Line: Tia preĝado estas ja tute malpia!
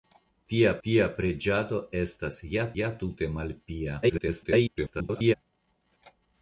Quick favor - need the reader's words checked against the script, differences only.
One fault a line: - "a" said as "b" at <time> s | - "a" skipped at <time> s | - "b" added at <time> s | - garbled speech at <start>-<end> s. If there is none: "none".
- "tia" added at 0.9 s
- "ja" added at 2.8 s
- garbled speech at 4.0-5.3 s